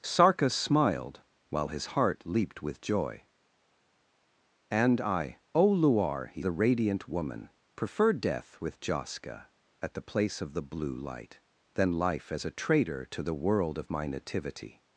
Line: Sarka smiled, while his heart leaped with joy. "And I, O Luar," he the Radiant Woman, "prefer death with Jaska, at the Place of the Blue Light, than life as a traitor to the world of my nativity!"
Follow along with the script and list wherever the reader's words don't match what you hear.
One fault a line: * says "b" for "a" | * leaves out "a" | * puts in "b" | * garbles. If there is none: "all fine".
all fine